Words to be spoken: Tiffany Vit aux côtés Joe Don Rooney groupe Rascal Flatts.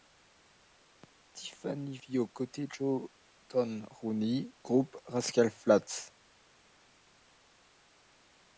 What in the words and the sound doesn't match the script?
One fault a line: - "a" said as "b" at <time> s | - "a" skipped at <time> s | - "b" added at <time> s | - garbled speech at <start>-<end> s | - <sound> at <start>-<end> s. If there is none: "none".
none